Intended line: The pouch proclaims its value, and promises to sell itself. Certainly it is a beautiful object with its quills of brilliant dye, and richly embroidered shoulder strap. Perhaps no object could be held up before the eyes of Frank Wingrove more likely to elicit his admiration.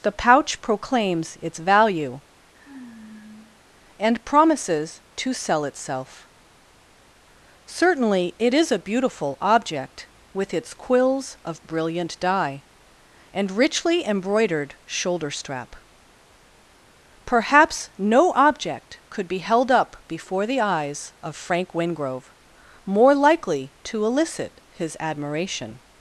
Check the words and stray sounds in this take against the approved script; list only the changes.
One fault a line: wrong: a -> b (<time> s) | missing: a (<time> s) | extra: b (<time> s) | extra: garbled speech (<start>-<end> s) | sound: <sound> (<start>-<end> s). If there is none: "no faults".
sound: sigh (2.5-3.6 s)